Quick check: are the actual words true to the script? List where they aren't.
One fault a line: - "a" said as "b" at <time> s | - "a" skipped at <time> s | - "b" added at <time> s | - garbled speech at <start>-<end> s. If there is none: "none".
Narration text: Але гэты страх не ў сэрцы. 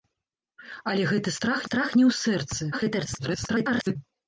- "страх" added at 1.6 s
- garbled speech at 2.7-4.0 s